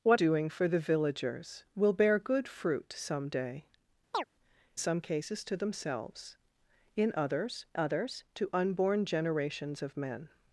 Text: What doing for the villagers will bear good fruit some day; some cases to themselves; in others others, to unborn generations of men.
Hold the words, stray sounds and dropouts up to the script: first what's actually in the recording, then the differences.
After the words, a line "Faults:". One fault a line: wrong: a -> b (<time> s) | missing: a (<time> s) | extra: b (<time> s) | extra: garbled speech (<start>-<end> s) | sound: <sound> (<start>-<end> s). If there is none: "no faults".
What doing for the villagers will bear good fruit some day; some cases to themselves; in others others, to unborn generations of men.
Faults:
sound: chirp (4.1-4.2 s)